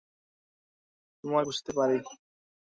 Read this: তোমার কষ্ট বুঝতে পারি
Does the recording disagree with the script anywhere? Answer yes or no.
yes